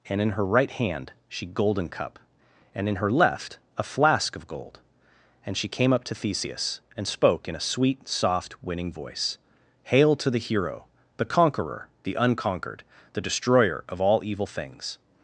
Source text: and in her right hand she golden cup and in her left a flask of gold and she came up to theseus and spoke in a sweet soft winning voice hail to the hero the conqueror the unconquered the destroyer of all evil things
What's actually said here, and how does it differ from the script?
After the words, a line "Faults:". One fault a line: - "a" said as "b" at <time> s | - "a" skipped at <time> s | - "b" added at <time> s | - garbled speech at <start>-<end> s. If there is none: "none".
and in her right hand she golden cup and in her left a flask of gold and she came up to theseus and spoke in a sweet soft winning voice hail to the hero the conqueror the unconquered the destroyer of all evil things
Faults:
none